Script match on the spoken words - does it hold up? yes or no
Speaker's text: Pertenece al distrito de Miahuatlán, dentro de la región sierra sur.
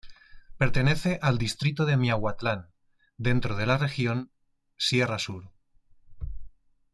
yes